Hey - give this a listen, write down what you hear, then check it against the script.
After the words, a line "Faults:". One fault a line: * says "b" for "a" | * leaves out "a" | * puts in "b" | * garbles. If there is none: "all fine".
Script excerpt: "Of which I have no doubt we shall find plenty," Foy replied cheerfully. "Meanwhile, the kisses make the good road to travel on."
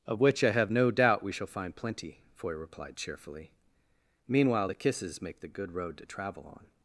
"Of which I have no doubt we shall find plenty," Foy replied cheerfully. "Meanwhile, the kisses make the good road to travel on."
Faults:
all fine